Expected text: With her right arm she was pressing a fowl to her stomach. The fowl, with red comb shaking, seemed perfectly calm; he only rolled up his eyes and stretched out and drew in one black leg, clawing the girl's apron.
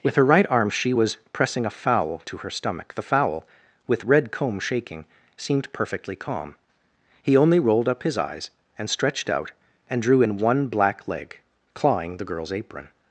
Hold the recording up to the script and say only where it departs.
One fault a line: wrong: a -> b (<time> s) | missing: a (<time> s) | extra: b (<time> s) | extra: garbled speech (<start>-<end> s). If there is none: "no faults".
no faults